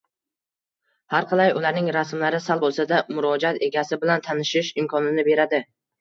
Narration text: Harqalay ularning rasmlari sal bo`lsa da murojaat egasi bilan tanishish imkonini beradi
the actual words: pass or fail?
pass